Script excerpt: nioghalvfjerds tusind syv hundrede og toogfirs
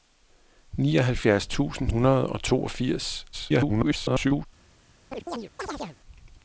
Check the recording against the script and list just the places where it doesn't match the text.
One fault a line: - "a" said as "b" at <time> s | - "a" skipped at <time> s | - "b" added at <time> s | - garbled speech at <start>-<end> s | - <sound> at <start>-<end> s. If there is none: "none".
- "syv" skipped at 1.9 s
- garbled speech at 3.3-4.5 s
- chirp at 5.1-6.0 s